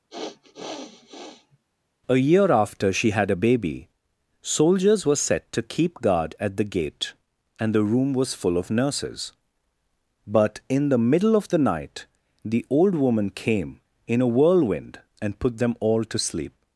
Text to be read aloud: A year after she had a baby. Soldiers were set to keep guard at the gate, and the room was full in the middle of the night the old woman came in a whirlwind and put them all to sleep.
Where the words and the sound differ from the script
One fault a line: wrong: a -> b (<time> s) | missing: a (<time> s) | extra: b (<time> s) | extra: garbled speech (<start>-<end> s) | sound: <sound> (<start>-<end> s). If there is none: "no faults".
sound: sniff (0.1-1.6 s)
extra: of nurses but (8.6 s)